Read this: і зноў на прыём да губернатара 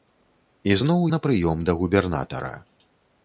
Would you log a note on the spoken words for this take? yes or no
no